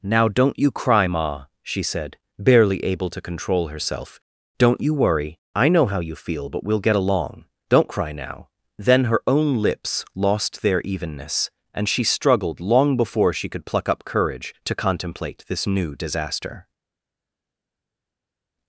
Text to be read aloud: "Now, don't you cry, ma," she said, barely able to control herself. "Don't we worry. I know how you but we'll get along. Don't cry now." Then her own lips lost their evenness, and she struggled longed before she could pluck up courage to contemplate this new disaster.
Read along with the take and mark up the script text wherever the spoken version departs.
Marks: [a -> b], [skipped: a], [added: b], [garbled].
"Now, don't you cry, ma," she said, barely able to control herself. "Don't [we -> you] worry. I know how you [added: feel] but we'll get along. Don't cry now." Then her own lips lost their evenness, and she struggled [longed -> long] before she could pluck up courage to contemplate this new disaster.